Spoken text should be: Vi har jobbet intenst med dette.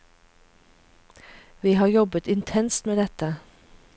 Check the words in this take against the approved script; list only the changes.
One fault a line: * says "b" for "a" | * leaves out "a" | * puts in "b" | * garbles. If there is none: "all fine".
all fine